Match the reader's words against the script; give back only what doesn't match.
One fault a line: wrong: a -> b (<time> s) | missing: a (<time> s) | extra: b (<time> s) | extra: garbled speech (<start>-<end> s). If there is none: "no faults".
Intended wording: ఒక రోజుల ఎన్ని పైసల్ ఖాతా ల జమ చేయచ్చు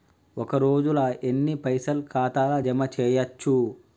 no faults